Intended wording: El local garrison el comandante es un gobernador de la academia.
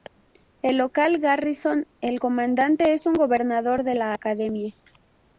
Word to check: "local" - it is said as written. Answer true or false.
true